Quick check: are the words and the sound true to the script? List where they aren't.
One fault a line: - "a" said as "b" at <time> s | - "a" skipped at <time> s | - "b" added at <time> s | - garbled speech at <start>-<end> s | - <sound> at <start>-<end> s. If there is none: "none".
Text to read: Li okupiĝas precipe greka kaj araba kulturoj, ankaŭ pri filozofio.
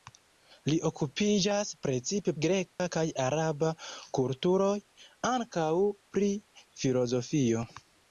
- dropout at 2.7-2.8 s